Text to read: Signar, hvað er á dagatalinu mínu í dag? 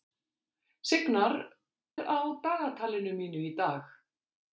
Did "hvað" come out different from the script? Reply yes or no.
yes